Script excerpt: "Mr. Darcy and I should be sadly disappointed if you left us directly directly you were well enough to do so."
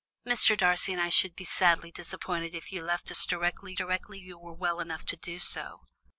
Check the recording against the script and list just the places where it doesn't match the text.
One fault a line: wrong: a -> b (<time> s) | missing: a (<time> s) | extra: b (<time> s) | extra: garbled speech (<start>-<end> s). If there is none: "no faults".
no faults